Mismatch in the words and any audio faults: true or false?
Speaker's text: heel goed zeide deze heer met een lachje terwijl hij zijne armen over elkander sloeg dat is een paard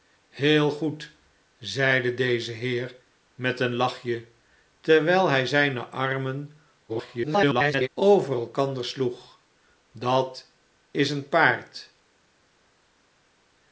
true